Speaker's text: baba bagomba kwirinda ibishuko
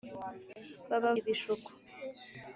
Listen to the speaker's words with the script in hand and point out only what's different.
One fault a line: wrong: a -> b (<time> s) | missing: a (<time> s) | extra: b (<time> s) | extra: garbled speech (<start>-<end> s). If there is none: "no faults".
missing: bagomba kwirinda (1.1 s)